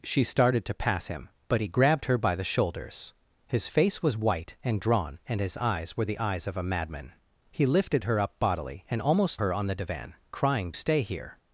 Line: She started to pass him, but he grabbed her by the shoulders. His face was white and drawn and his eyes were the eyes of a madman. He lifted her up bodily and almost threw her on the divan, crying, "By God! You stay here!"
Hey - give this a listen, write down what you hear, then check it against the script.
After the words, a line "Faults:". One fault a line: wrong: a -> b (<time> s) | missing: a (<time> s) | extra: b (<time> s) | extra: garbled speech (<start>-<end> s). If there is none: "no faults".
She started to pass him, but he grabbed her by the shoulders. His face was white and drawn and his eyes were the eyes of a madman. He lifted her up bodily and almost her on the divan, crying, "Stay here!"
Faults:
missing: threw (9.4 s)
missing: By God You (10.7 s)